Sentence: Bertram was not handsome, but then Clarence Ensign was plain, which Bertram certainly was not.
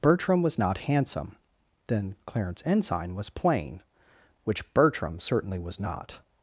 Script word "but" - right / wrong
wrong